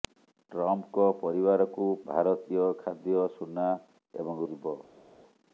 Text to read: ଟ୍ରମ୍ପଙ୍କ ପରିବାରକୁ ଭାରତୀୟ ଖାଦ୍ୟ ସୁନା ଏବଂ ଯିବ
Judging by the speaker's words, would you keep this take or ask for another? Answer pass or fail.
pass